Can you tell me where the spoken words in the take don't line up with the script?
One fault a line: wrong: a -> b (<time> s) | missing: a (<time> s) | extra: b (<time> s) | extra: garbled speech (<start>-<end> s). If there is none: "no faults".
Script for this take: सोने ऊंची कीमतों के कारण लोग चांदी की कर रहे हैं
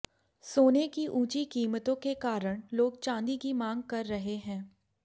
extra: की (0.9 s)
extra: मांग (3.5 s)